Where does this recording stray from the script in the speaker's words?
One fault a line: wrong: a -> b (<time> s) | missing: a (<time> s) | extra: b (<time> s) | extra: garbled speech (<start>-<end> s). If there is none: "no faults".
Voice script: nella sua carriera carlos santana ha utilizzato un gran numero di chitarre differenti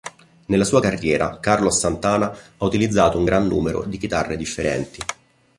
no faults